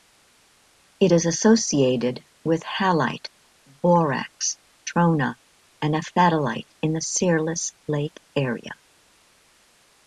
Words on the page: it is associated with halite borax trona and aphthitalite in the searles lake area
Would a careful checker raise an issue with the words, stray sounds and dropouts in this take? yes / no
no